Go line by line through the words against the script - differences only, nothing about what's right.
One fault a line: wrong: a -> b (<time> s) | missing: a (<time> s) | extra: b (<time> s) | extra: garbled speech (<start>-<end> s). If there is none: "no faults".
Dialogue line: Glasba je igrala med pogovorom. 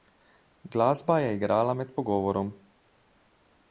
no faults